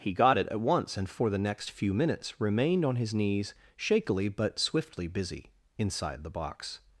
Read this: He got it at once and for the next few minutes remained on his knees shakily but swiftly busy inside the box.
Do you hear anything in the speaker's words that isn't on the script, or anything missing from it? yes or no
no